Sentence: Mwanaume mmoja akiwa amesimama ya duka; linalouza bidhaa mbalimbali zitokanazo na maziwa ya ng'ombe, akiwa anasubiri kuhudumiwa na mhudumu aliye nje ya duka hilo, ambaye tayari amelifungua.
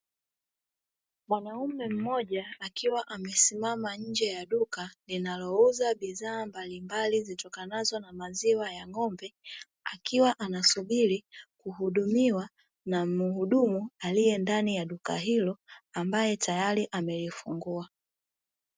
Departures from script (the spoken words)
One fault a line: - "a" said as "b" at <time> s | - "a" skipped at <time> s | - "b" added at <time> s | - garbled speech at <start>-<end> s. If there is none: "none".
- "nje" added at 4.0 s
- "nje" said as "ndani" at 14.4 s